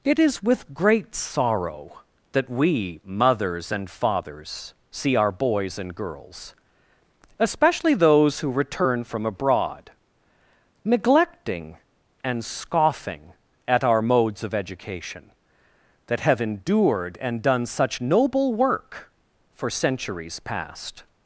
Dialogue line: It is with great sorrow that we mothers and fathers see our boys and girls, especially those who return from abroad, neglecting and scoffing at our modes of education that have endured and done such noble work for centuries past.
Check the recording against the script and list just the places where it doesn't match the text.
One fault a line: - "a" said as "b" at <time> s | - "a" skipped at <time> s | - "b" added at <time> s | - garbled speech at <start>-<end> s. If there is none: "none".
none